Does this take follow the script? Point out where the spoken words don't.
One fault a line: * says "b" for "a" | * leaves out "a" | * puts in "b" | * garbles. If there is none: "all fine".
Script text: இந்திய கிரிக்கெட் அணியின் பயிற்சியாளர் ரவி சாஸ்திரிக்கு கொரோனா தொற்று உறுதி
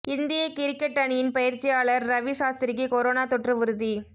all fine